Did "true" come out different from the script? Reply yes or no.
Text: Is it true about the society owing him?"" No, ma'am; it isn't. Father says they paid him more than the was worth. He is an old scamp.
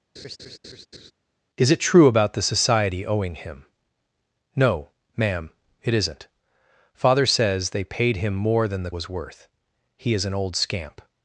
no